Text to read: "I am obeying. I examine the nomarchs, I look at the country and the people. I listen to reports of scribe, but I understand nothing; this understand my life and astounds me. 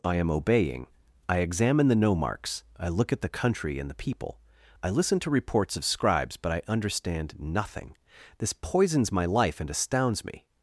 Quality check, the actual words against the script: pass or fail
fail